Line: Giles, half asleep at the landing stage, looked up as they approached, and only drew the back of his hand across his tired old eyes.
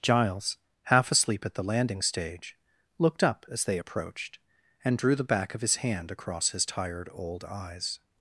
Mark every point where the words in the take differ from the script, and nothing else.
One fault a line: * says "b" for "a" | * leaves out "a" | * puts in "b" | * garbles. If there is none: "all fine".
* leaves out "only"